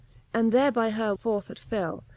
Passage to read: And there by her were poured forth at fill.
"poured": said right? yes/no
no